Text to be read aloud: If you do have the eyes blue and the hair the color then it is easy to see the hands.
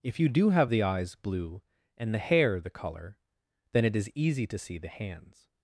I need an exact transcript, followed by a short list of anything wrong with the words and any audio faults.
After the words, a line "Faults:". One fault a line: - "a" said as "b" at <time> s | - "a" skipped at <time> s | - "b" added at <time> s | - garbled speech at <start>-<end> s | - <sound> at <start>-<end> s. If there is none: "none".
If you do have the eyes blue and the hair the color then it is easy to see the hands.
Faults:
none